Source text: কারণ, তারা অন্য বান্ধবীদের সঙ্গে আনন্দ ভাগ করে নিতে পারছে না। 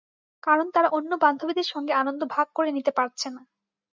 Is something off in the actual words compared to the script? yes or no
no